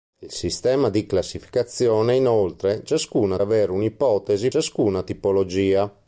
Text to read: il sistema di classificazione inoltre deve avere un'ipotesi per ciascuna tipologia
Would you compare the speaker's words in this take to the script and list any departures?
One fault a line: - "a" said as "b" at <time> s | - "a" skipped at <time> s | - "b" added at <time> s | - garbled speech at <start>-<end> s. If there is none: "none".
- "deve" said as "ciascuna" at 2.8 s
- "per" skipped at 4.5 s